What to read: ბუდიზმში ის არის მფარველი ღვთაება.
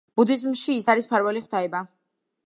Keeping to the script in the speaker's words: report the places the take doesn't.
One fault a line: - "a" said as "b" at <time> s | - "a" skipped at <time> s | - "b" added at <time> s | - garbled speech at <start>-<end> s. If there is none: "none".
none